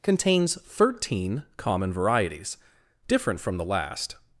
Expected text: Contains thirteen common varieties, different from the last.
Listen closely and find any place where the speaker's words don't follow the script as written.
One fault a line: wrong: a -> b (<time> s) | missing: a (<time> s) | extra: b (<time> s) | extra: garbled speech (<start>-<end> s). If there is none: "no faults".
no faults